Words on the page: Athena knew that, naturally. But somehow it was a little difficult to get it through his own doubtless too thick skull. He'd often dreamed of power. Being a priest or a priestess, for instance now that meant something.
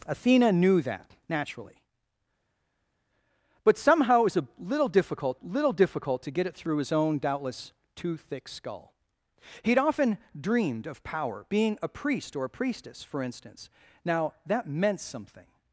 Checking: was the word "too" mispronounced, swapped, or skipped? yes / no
no